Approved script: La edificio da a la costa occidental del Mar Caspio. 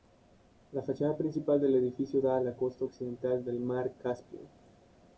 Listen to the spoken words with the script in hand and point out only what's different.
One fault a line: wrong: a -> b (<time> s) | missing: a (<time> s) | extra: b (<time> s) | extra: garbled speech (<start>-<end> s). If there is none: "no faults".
extra: fachada principal del (0.8 s)